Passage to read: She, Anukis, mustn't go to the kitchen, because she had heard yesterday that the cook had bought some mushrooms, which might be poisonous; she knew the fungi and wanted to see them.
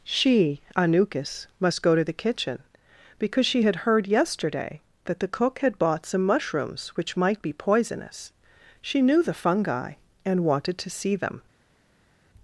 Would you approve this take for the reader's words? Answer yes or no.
no